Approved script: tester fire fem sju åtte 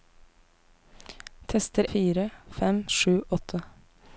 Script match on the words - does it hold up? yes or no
yes